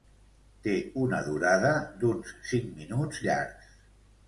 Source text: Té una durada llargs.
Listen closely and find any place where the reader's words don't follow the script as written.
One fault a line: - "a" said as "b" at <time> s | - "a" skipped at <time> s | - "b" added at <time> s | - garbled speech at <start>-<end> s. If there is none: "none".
- "d'uns cinc minuts" added at 2.0 s